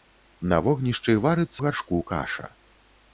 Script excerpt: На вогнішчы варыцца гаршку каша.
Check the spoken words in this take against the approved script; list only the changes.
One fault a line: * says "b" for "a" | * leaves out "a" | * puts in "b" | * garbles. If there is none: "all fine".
all fine